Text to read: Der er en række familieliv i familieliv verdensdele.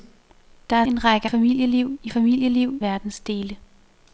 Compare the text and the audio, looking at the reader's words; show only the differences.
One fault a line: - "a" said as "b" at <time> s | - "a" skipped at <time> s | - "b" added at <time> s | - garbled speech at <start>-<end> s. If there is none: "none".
none